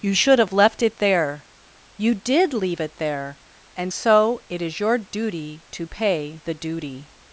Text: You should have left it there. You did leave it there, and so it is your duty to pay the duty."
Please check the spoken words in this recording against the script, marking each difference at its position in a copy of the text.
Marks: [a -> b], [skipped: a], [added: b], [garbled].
You should have left it there. You did leave it there, and so it is your duty to pay the duty."